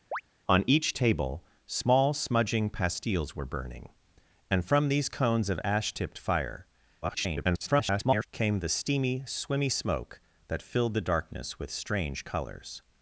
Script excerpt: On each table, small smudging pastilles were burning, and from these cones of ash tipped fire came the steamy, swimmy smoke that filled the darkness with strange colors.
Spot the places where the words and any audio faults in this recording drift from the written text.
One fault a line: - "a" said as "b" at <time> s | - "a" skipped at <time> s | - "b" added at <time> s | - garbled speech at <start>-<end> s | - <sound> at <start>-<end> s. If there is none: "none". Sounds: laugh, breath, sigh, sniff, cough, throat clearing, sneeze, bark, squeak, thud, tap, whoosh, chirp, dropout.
- chirp at 0.1-0.2 s
- garbled speech at 7.0-8.3 s